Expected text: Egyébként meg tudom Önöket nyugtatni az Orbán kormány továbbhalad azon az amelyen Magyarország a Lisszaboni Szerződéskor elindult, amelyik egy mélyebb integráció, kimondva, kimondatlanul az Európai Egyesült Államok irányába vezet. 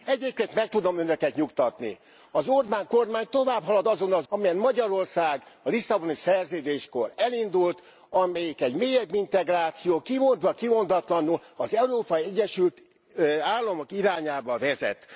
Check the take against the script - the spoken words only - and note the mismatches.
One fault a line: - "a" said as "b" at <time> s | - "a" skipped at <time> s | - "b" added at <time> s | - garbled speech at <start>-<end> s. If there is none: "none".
none